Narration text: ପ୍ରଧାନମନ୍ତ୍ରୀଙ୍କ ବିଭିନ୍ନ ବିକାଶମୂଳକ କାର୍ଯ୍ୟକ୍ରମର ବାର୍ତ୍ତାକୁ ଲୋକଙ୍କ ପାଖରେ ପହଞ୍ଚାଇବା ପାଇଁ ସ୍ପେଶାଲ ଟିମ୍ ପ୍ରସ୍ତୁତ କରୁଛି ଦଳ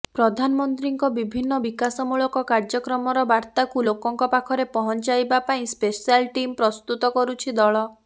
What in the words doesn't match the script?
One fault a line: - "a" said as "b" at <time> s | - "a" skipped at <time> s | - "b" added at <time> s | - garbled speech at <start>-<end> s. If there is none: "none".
none